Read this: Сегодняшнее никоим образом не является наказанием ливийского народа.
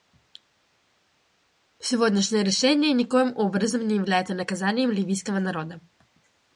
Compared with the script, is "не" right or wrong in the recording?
right